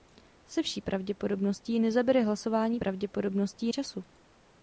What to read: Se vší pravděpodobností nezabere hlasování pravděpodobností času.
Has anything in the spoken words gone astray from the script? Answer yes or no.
no